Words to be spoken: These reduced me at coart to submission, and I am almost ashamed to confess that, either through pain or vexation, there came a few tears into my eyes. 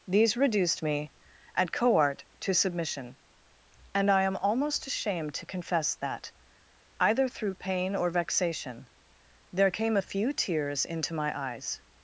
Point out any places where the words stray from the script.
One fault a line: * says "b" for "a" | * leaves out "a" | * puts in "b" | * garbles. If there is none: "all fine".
all fine